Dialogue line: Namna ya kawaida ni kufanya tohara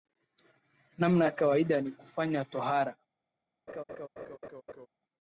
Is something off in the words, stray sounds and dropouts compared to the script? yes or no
yes